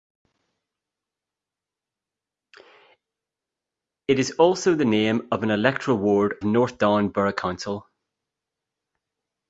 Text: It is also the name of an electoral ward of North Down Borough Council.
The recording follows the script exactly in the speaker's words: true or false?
false